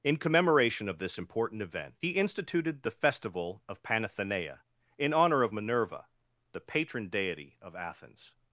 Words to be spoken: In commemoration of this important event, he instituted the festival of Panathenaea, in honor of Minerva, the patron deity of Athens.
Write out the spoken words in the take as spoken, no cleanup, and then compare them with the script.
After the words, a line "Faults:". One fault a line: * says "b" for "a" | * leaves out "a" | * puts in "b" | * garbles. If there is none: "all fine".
In commemoration of this important event, he instituted the festival of Panathenaea, in honor of Minerva, the patron deity of Athens.
Faults:
all fine